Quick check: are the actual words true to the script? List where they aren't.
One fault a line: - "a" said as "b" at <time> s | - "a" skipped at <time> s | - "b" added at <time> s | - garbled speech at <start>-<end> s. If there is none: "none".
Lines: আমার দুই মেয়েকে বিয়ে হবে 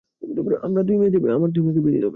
none